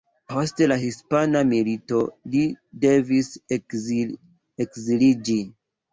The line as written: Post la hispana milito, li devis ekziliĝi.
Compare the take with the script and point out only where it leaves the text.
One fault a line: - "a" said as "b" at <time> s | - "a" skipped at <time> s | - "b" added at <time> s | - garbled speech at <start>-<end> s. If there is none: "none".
none